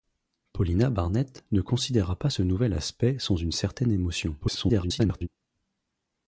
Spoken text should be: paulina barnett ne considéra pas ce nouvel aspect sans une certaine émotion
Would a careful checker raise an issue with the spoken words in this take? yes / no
yes